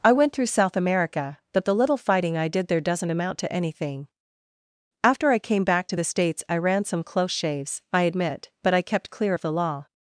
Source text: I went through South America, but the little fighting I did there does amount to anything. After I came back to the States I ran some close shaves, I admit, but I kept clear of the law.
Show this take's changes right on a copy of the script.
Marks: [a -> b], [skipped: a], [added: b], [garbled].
I went through South America, but the little fighting I did there [does -> doesn't] amount to anything. After I came back to the States I ran some close shaves, I admit, but I kept clear of the law.